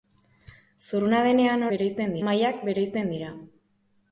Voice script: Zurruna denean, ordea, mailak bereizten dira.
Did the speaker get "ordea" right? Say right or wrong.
wrong